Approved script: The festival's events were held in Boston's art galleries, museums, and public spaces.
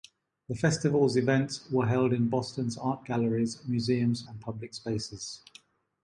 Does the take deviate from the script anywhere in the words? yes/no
no